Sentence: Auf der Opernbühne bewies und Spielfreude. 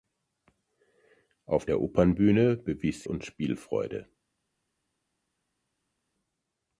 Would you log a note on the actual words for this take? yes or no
no